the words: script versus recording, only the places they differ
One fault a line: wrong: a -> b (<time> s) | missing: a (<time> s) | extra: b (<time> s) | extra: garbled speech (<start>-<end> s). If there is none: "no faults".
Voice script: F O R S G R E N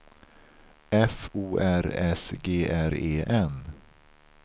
no faults